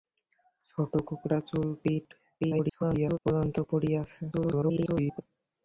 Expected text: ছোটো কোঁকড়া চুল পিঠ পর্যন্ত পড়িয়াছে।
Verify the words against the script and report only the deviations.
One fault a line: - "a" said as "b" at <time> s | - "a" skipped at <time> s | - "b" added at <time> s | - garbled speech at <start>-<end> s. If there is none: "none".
- garbled speech at 2.4-3.2 s
- garbled speech at 4.3-5.2 s